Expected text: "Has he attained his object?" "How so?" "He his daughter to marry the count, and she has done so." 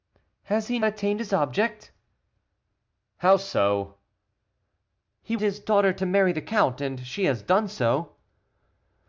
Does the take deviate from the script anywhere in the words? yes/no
no